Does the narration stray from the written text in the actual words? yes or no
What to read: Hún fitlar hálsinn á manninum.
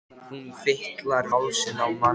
no